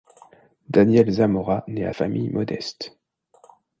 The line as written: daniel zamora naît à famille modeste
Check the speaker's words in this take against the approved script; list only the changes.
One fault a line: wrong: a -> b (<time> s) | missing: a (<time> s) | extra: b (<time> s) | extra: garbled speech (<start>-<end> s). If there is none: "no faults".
no faults